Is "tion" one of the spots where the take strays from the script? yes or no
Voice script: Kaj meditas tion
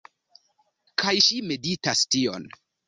no